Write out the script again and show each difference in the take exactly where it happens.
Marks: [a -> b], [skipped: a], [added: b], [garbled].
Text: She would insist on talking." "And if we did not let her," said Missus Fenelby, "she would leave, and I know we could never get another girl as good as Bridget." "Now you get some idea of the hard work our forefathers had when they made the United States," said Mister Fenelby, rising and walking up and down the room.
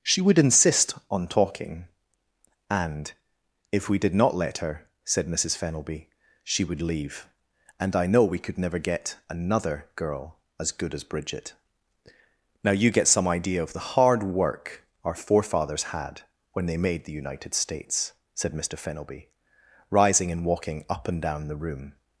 She would insist on talking." "And if we did not let her," said Missus Fenelby, "she would leave, and I know we could never get another girl as good as Bridget." "Now you get some idea of the hard work our forefathers had when they made the United States," said Mister Fenelby, rising and walking up and down the room.